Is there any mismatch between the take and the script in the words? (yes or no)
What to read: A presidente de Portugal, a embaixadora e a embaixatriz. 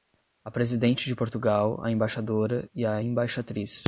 no